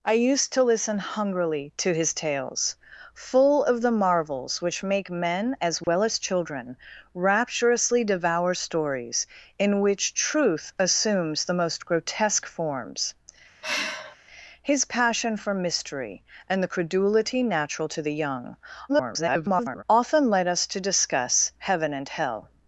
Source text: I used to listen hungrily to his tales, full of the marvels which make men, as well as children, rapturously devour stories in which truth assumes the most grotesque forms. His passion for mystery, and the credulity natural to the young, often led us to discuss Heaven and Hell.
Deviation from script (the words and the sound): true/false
true